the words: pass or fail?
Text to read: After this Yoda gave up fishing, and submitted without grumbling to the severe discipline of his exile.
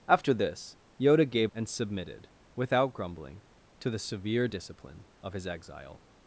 fail